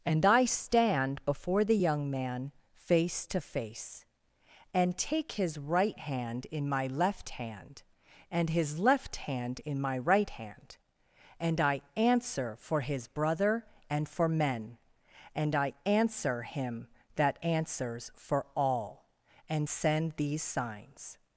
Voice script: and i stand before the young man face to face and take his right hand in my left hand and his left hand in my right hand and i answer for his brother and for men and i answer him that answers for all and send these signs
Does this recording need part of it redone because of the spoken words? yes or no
no